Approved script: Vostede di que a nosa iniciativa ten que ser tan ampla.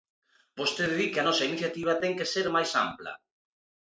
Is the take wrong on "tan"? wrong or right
wrong